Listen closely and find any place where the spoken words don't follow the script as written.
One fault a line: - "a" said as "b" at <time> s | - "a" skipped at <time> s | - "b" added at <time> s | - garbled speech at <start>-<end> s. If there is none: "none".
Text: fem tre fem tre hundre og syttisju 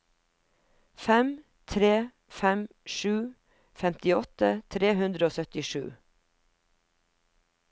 - "sju femtiåtte" added at 3.0 s